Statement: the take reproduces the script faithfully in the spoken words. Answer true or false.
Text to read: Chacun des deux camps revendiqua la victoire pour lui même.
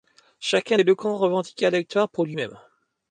true